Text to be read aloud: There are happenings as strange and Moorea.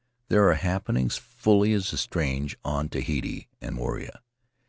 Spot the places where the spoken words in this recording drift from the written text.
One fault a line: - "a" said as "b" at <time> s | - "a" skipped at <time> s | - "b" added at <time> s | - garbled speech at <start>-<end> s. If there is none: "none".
- "fully" added at 1.2 s
- "on Tahiti" added at 2.6 s